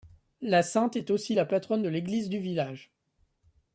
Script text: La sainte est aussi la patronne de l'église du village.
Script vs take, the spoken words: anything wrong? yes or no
no